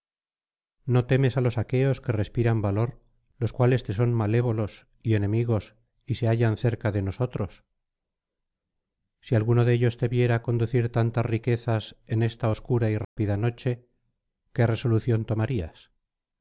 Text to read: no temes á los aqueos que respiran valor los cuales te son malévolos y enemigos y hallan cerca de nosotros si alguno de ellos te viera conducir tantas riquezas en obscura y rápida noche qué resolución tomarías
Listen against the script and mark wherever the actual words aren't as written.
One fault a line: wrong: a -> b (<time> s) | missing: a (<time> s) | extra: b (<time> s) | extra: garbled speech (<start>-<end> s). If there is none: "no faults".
extra: se (6.1 s)
extra: esta (12.2 s)